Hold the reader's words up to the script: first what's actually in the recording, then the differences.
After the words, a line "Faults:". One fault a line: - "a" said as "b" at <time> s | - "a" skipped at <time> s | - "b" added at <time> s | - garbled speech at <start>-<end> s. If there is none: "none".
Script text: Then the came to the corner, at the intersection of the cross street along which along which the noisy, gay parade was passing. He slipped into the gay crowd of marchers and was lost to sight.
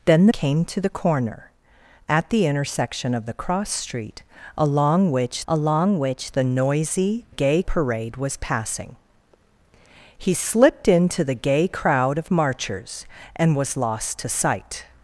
Then the came to the corner, at the intersection of the cross street along which along which the noisy, gay parade was passing. He slipped into the gay crowd of marchers and was lost to sight.
Faults:
none